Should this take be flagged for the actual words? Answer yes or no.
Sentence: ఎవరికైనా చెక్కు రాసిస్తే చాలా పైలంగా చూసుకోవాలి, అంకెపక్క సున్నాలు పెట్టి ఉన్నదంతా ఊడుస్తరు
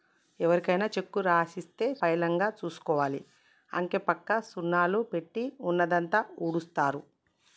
yes